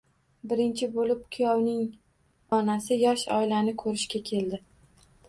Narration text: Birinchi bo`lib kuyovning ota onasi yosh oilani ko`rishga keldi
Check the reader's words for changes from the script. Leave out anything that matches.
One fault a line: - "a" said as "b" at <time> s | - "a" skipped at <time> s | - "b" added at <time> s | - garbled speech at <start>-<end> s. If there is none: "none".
- "ota" skipped at 1.8 s